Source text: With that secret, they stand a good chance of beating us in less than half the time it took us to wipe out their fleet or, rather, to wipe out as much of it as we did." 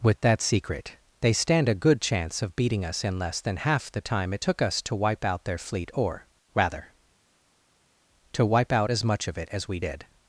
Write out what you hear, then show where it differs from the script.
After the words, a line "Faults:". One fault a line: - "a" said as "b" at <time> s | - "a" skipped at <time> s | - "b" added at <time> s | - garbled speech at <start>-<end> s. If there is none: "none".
With that secret, they stand a good chance of beating us in less than half the time it took us to wipe out their fleet or, rather, to wipe out as much of it as we did."
Faults:
none